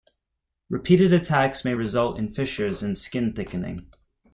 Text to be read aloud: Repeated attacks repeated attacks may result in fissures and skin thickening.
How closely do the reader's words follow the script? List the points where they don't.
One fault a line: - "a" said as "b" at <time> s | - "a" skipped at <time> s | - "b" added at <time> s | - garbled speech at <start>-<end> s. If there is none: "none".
- "repeated attacks" skipped at 1.6 s